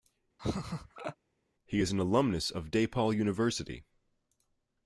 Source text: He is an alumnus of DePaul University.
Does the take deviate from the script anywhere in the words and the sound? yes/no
yes